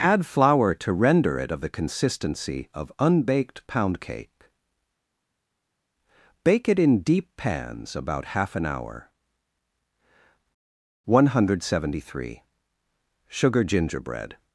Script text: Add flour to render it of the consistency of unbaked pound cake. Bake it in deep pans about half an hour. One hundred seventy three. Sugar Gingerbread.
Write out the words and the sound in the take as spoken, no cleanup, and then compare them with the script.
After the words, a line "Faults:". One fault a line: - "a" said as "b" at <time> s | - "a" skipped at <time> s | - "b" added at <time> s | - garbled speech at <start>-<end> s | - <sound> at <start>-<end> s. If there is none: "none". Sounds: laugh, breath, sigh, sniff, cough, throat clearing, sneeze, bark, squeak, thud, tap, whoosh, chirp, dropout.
Add flour to render it of the consistency of unbaked pound cake. Bake it in deep pans about half an hour. One hundred seventy three. Sugar Gingerbread.
Faults:
none